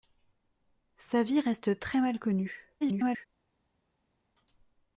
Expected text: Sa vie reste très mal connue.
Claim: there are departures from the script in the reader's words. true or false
true